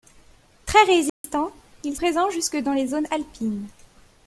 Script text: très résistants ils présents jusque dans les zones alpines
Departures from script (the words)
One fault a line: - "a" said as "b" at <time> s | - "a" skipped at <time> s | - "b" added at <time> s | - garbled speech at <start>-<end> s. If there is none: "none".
none